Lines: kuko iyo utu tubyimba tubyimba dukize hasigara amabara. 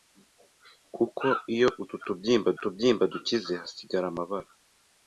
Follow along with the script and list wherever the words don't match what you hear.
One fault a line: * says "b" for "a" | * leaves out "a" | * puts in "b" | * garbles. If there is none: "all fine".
all fine